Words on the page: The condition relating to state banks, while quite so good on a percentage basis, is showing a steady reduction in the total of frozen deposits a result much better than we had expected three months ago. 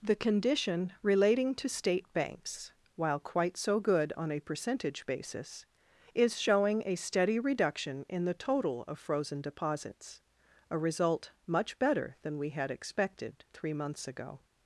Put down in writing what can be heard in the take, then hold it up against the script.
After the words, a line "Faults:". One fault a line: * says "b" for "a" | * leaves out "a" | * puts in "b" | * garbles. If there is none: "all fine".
The condition relating to state banks, while quite so good on a percentage basis, is showing a steady reduction in the total of frozen deposits a result much better than we had expected three months ago.
Faults:
all fine